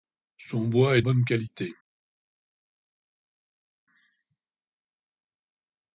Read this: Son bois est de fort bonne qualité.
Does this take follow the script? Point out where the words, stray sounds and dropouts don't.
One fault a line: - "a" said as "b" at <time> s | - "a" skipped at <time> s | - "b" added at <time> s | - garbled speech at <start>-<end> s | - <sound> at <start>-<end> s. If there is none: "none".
- "de fort" skipped at 1.0 s